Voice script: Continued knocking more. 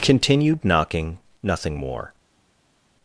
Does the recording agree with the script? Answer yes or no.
no